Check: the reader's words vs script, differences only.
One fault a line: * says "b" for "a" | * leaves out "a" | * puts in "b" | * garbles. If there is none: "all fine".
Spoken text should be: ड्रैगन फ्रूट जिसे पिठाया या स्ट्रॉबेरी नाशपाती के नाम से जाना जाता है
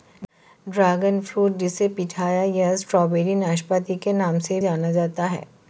all fine